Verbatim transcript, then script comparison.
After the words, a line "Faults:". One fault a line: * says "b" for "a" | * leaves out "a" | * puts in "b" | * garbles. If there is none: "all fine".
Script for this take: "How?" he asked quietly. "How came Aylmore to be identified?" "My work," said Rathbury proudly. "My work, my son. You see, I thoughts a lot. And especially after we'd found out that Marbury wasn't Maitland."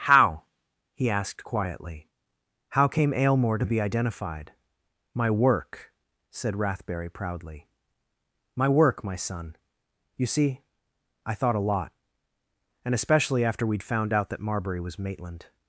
"How?" he asked quietly. "How came Aylmore to be identified?" "My work," said Rathbury proudly. "My work, my son. You see, I thought a lot. And especially after we'd found out that Marbury was Maitland."
Faults:
* says "thought" for "thoughts"
* says "was" for "wasn't"